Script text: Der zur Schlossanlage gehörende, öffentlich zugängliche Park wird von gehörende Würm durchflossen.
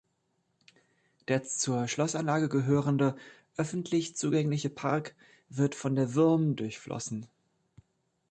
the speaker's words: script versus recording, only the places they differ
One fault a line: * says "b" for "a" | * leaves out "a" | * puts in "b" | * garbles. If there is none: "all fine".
* says "der" for "gehörende"